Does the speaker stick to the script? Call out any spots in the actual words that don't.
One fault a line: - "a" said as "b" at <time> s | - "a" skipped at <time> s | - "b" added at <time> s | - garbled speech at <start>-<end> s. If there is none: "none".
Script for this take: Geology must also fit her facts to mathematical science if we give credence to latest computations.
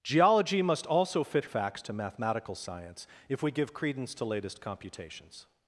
- "her" skipped at 1.4 s